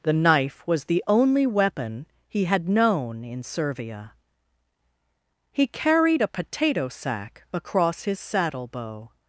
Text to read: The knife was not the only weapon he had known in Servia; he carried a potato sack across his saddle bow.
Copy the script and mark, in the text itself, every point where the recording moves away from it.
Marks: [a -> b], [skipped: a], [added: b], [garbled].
The knife was [skipped: not] the only weapon he had known in Servia; he carried a potato sack across his saddle bow.